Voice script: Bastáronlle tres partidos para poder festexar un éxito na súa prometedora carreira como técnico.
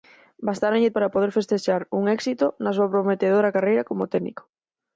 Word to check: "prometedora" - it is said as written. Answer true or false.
true